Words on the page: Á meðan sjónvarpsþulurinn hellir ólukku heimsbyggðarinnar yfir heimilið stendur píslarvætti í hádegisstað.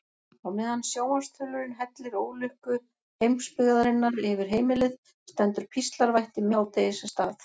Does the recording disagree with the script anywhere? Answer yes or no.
no